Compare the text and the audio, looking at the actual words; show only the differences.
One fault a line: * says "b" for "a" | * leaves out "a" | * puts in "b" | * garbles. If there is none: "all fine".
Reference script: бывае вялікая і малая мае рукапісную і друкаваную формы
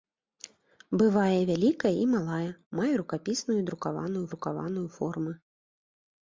* puts in "друкаваную"